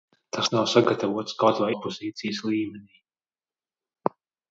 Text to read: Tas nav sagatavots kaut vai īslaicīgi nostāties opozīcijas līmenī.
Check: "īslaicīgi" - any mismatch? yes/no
yes